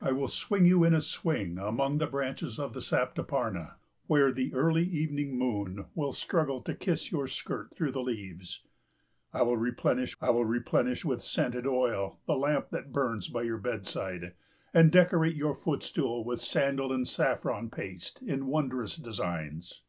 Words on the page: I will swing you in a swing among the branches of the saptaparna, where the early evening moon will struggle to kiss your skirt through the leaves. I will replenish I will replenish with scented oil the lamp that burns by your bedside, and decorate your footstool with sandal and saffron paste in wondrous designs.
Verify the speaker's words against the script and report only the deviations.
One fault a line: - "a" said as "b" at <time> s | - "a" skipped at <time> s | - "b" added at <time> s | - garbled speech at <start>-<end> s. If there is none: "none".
none